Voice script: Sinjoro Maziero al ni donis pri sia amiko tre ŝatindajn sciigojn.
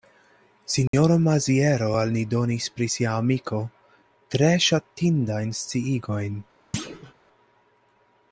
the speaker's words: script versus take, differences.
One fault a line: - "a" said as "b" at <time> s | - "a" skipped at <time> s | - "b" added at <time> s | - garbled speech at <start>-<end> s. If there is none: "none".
none